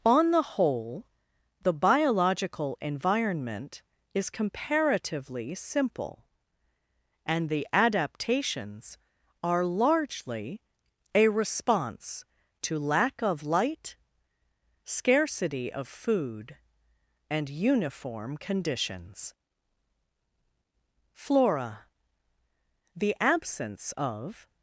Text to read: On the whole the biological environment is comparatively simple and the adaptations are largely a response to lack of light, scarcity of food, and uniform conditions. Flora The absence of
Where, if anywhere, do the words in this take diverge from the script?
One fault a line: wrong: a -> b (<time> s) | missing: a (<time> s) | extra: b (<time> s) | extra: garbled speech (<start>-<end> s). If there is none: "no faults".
no faults